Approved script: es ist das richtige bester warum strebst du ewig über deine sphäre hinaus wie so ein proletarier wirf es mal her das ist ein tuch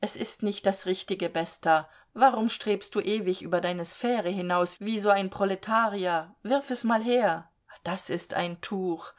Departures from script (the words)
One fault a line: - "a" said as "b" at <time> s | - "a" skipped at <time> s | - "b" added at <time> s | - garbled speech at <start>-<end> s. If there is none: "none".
- "nicht" added at 0.4 s